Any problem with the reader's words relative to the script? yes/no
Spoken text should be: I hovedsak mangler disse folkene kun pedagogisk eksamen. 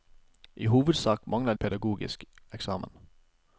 yes